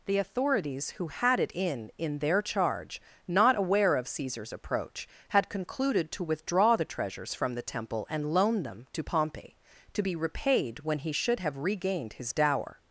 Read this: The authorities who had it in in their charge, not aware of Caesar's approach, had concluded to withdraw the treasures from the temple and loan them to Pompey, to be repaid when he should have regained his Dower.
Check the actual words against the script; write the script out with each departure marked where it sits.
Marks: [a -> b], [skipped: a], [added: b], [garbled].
The authorities who had it in in their charge, not aware of Caesar's approach, had concluded to withdraw the treasures from the temple and loan them to Pompey, to be repaid when he should have regained his Dower.